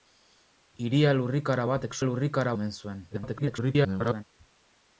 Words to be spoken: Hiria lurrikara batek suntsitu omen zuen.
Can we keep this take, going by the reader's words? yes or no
no